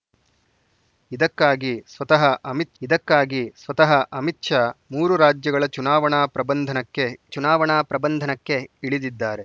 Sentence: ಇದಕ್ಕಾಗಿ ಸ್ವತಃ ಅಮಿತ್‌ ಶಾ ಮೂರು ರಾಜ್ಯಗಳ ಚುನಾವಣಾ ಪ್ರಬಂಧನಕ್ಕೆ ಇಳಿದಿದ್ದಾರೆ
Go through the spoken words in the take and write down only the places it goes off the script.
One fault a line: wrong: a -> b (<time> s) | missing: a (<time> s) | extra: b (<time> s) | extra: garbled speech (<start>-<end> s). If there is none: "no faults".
extra: ಇದಕ್ಕಾಗಿ ಸ್ವತಃ ಅಮಿತ್ (2.8 s)
extra: ಚುನಾವಣಾ ಪ್ರಬಂಧನಕ್ಕೆ (7.3 s)